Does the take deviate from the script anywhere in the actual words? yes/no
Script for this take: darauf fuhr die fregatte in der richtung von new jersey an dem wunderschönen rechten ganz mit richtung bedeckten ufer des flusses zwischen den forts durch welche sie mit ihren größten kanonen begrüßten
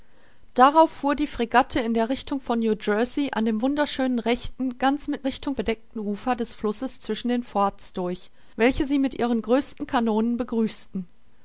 no